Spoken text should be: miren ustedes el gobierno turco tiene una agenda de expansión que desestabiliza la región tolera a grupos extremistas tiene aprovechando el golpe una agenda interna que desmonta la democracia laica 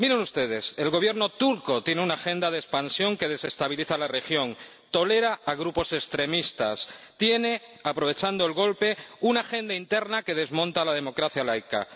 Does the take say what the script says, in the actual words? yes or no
yes